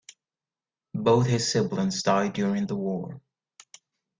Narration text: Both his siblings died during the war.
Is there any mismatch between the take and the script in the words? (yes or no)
no